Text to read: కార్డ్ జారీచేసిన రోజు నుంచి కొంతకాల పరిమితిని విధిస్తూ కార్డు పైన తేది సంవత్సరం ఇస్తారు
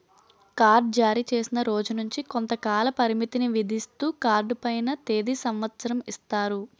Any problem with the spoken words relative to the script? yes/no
no